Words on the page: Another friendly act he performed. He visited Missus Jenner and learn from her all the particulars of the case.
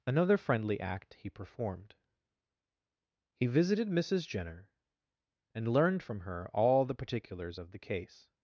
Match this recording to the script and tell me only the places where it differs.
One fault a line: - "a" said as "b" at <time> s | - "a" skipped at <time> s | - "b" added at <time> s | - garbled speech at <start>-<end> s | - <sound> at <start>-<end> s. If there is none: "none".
- "learn" said as "learned" at 5.7 s